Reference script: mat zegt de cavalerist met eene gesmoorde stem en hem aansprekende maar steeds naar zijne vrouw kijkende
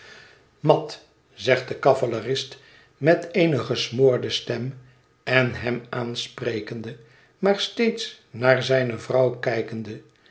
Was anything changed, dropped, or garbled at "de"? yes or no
no